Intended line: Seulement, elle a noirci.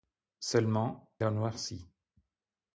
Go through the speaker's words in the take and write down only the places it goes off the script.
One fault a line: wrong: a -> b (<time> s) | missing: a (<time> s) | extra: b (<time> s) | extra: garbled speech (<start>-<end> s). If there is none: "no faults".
missing: elle (1.1 s)